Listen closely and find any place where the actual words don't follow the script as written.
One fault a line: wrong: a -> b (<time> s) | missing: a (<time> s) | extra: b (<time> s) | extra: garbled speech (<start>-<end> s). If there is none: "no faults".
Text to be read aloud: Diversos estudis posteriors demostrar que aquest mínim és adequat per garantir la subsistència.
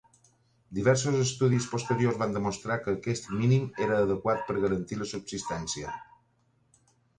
extra: van (2.2 s)
wrong: és -> era (3.9 s)